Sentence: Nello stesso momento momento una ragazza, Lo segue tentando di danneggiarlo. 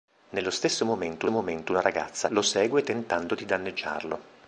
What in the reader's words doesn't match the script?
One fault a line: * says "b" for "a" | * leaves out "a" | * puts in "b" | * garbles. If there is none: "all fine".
all fine